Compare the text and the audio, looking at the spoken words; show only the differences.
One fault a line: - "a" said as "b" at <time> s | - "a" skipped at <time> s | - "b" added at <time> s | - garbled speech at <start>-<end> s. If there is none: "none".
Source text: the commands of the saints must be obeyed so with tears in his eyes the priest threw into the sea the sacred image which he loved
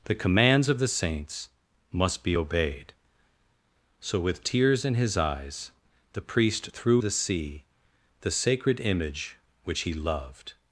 - "into" skipped at 7.0 s